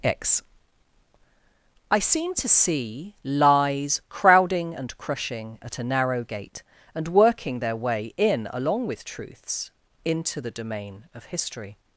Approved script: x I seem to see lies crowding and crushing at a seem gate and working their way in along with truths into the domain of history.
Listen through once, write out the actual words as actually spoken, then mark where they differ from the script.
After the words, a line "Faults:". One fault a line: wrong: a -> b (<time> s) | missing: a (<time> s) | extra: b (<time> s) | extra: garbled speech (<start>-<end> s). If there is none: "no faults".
x I seem to see lies crowding and crushing at a narrow gate and working their way in along with truths into the domain of history.
Faults:
wrong: seem -> narrow (5.8 s)